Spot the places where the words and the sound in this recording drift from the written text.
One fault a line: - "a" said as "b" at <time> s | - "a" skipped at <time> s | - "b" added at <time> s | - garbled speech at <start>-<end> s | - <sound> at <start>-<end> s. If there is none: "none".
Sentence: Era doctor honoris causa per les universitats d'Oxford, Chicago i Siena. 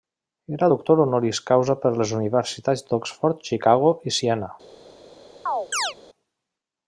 - chirp at 5.5-5.9 s